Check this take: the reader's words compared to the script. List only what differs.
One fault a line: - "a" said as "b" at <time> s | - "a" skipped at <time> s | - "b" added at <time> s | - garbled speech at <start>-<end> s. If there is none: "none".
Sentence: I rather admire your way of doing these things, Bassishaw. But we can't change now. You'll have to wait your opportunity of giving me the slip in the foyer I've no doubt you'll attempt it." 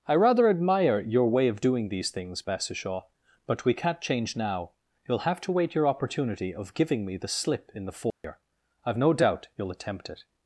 none